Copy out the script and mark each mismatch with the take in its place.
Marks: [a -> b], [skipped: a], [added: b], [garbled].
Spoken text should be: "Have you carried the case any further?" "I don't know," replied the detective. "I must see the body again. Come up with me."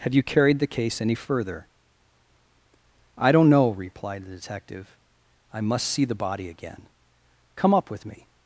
"Have you carried the case any further?" "I don't know," replied the detective. "I must see the body again. Come up with me."